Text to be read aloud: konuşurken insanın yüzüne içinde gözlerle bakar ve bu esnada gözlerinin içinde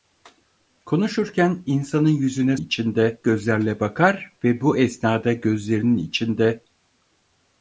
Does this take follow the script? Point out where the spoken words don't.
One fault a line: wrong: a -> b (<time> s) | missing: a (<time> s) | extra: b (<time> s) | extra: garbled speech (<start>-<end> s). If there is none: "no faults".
no faults